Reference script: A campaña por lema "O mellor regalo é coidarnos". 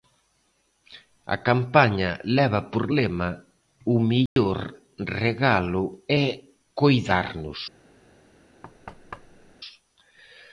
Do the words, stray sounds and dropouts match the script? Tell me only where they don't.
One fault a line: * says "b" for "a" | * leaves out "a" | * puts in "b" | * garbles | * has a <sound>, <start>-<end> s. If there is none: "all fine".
* puts in "leva"
* has a dropout, 4.3-4.4 s
* has a thud, 8.6-9.6 s